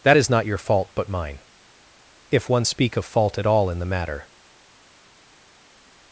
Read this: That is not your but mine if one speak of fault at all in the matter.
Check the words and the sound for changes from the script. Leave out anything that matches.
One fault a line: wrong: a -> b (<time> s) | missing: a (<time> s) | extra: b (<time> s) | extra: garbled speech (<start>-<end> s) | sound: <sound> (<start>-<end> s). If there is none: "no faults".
extra: fault (0.6 s)